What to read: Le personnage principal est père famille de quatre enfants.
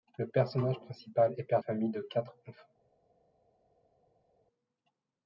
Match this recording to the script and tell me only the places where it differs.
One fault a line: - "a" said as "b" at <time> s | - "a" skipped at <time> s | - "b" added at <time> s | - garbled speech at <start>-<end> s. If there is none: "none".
none